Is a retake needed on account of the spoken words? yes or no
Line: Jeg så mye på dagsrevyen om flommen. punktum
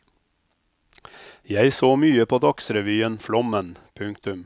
yes